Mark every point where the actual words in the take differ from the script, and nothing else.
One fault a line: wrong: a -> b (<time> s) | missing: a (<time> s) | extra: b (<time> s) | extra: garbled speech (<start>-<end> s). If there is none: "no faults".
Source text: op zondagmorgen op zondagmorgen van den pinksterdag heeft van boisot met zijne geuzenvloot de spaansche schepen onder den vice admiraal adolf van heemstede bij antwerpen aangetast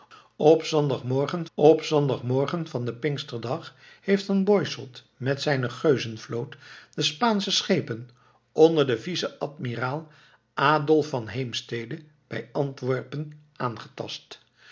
no faults